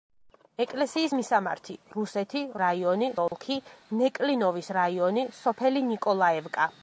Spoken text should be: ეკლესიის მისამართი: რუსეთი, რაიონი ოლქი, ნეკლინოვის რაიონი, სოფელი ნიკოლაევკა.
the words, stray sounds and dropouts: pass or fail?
fail